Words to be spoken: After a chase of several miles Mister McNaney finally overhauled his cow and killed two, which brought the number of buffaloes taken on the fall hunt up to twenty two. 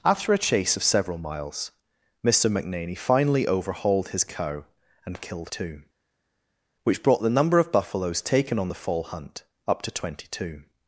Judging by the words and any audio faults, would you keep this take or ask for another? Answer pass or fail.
pass